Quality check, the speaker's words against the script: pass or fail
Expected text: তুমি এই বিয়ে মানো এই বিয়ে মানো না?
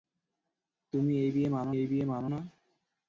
pass